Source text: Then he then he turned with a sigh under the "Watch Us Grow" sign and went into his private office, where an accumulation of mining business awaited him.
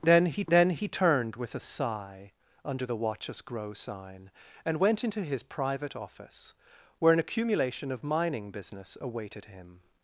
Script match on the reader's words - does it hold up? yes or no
yes